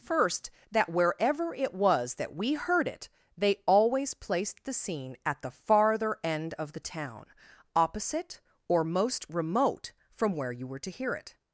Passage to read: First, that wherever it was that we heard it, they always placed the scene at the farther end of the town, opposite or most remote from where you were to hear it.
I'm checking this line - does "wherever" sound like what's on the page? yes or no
yes